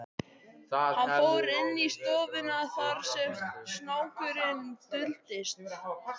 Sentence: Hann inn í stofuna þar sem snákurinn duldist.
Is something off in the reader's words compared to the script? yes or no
yes